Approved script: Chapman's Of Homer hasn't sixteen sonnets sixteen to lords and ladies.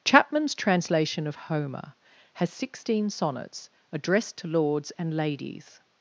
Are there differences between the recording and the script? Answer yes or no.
yes